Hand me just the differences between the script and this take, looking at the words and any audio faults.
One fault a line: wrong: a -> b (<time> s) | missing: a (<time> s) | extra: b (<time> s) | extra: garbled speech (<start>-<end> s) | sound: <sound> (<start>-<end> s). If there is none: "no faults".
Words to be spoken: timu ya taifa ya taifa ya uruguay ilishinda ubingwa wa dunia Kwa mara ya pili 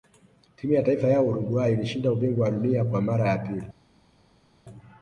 missing: taifa ya (1.2 s)